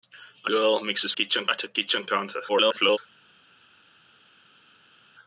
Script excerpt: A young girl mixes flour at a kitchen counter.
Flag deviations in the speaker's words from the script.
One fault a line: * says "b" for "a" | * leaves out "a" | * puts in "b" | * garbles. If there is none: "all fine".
* leaves out "young"
* says "kitchen" for "flour"
* garbles